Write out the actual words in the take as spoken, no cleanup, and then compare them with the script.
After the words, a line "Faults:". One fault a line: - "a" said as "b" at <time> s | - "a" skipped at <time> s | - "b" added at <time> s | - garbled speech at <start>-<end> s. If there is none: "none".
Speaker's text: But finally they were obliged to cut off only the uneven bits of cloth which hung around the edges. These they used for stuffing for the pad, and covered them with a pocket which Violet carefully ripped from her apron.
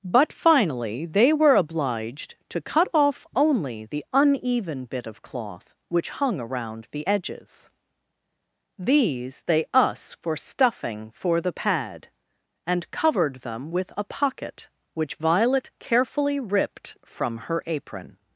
But finally they were obliged to cut off only the uneven bit of cloth which hung around the edges. These they us for stuffing for the pad, and covered them with a pocket which Violet carefully ripped from her apron.
Faults:
- "bits" said as "bit" at 4.8 s
- "used" said as "us" at 9.7 s